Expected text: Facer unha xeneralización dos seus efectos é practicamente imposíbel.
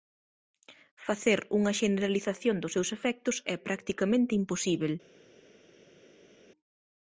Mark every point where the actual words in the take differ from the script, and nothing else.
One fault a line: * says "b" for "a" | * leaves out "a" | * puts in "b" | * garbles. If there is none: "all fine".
all fine